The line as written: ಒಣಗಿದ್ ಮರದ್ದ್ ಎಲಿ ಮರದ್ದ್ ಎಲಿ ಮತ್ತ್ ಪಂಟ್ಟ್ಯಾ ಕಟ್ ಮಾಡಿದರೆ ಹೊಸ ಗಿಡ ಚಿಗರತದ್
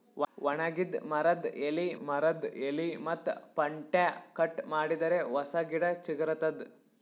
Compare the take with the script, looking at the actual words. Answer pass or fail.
pass